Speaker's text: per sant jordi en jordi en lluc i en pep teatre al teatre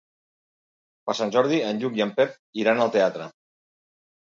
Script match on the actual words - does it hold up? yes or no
no